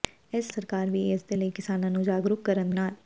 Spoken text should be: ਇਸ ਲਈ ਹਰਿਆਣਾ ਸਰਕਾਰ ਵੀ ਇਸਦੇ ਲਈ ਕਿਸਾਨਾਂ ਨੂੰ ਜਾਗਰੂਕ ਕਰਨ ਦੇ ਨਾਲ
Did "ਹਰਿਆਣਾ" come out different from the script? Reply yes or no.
yes